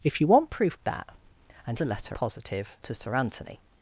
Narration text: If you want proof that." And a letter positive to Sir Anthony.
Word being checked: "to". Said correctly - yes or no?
yes